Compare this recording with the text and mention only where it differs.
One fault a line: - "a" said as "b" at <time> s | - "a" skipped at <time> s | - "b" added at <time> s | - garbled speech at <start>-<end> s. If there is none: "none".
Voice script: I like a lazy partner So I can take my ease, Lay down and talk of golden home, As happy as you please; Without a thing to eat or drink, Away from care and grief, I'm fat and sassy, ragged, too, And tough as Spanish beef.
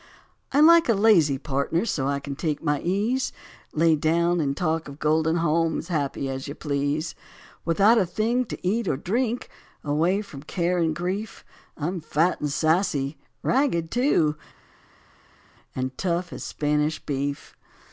none